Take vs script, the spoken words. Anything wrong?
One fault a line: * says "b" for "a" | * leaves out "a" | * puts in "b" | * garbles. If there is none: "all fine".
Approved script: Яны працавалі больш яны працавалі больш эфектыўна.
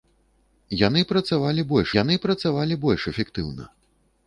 all fine